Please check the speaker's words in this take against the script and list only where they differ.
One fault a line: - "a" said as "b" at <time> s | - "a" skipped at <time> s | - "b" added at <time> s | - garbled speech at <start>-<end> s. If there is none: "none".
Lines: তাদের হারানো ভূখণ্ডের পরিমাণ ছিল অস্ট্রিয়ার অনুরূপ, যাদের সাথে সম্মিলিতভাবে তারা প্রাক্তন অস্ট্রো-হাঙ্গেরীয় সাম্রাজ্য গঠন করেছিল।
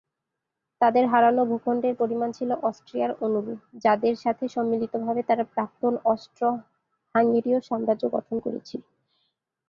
none